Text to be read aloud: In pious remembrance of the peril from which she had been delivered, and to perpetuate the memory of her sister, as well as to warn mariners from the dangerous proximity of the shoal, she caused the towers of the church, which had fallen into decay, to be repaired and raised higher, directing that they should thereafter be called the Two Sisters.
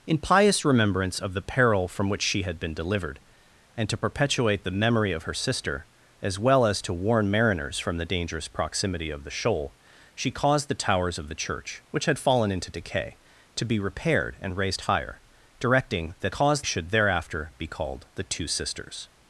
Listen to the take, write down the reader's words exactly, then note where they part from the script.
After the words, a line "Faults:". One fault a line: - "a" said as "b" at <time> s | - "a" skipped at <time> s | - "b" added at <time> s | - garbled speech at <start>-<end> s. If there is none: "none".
In pious remembrance of the peril from which she had been delivered, and to perpetuate the memory of her sister, as well as to warn mariners from the dangerous proximity of the shoal, she caused the towers of the church, which had fallen into decay, to be repaired and raised higher, directing that caused should thereafter be called the Two Sisters.
Faults:
- "they" said as "caused" at 16.3 s